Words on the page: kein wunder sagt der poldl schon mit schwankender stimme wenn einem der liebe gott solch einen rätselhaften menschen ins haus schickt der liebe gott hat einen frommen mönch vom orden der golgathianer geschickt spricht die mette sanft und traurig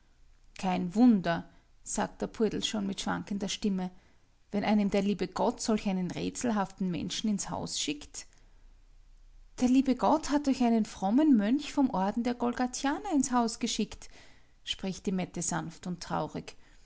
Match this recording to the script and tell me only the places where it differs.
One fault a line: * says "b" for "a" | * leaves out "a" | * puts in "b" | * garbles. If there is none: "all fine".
* puts in "euch"
* puts in "ins haus"